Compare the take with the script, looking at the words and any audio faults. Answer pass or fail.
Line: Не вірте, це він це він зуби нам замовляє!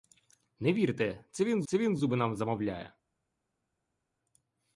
pass